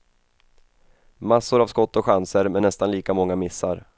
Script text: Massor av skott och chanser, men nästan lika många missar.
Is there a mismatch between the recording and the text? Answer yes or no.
no